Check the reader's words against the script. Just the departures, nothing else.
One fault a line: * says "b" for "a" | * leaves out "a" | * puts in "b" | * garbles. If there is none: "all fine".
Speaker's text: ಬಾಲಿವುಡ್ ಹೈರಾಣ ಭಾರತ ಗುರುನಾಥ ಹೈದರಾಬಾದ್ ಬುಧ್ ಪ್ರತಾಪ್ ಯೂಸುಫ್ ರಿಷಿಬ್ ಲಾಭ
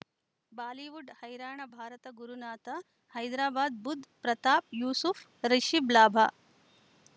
all fine